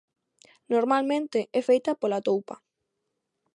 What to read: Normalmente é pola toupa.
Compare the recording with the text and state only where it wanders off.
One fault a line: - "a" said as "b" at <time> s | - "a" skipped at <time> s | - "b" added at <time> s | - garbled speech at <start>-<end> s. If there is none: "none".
- "feita" added at 1.7 s